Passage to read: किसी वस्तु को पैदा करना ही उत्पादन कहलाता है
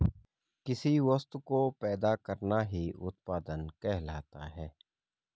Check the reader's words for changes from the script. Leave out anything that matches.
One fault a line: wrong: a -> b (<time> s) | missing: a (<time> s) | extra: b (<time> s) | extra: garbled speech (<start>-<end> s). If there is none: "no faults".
no faults